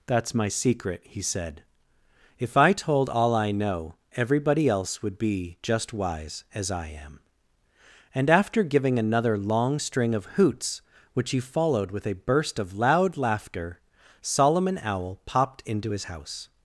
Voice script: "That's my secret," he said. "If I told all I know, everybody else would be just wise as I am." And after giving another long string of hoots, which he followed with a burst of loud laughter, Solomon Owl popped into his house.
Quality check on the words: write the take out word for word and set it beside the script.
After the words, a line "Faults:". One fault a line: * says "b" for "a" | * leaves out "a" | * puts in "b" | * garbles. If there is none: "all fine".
"That's my secret," he said. "If I told all I know, everybody else would be just wise as I am." And after giving another long string of hoots, which he followed with a burst of loud laughter, Solomon Owl popped into his house.
Faults:
all fine